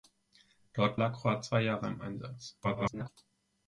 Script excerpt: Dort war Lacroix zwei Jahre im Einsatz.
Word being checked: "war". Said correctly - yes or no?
no